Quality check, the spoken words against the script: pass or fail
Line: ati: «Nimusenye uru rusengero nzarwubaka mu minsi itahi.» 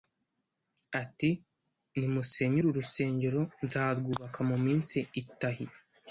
pass